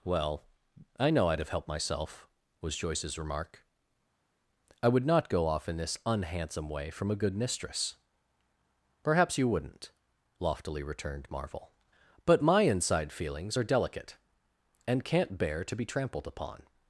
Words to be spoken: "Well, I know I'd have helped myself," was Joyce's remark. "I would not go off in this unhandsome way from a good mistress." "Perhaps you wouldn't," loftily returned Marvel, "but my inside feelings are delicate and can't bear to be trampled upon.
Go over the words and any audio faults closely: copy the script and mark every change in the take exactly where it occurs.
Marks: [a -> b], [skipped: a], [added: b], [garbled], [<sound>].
"Well, I know I'd have helped myself," was Joyce's remark. "I would not go off in this unhandsome way from a good mistress." "Perhaps you wouldn't," loftily returned Marvel, "but my inside feelings are delicate and can't bear to be trampled upon.